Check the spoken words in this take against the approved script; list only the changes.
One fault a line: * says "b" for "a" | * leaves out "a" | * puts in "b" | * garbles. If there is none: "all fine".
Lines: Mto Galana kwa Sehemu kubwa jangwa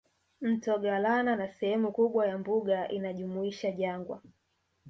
* says "na" for "kwa"
* puts in "ya mbuga inajumuisha"